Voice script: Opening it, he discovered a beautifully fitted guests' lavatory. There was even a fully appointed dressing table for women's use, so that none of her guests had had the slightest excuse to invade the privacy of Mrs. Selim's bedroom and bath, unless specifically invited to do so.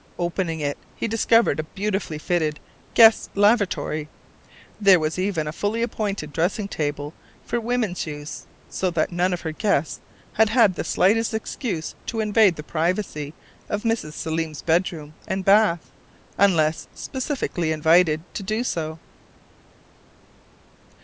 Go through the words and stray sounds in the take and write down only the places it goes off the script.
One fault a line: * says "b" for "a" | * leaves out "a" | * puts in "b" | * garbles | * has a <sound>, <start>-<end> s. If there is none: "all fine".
all fine